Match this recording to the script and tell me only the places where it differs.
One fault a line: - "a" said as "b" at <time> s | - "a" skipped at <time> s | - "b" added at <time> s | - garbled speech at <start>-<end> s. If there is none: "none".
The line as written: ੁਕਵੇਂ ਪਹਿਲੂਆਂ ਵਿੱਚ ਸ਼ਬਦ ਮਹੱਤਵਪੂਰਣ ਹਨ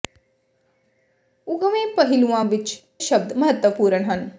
none